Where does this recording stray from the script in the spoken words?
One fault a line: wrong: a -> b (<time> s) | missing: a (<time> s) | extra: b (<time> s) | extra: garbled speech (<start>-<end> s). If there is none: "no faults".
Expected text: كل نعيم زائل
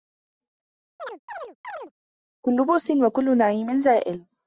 extra: بؤس وكل (2.6 s)